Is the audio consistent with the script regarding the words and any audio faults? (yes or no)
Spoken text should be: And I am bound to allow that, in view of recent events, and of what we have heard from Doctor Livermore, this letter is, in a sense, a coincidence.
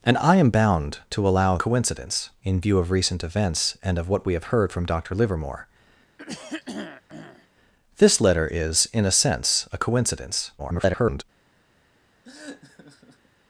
no